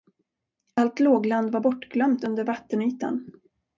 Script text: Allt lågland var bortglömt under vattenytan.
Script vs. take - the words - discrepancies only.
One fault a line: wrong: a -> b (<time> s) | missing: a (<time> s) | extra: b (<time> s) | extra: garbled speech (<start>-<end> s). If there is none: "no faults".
no faults